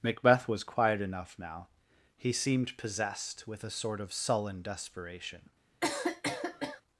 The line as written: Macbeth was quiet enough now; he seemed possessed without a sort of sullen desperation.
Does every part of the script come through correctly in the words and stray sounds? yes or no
no